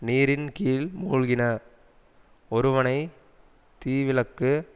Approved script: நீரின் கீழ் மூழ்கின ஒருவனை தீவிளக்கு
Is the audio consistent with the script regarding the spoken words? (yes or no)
yes